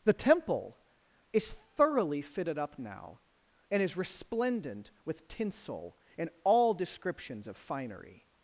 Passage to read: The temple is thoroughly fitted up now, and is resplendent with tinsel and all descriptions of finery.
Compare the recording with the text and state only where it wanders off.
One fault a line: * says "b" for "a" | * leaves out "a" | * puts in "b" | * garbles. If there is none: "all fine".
all fine